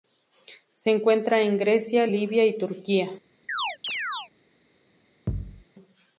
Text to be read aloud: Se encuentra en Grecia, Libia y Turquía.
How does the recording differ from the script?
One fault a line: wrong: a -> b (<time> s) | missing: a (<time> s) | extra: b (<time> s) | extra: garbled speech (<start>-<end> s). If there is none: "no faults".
no faults